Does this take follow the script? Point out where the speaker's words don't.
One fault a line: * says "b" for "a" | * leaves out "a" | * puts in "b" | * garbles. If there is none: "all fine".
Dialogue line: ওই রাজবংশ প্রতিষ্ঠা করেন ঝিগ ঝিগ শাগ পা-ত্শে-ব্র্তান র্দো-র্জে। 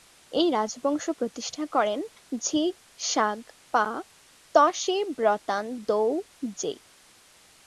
* says "এই" for "ওই"
* leaves out "ঝিগ"